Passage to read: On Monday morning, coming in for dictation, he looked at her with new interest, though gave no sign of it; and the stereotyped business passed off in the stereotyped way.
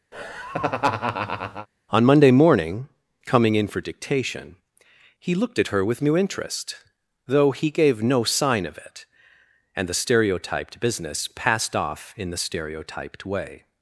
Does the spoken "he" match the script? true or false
true